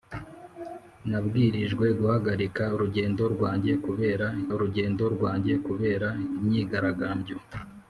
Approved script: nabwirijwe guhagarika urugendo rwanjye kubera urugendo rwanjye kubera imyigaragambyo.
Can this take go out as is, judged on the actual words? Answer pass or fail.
pass